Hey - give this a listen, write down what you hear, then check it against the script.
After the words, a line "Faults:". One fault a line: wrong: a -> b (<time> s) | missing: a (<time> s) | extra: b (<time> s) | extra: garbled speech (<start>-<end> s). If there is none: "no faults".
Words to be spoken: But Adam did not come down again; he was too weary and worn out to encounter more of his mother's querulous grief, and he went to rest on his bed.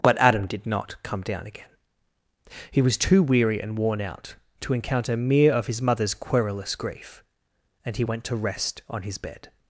But Adam did not come down again; he was too weary and worn out to encounter mere of his mother's querulous grief, and he went to rest on his bed.
Faults:
wrong: more -> mere (5.2 s)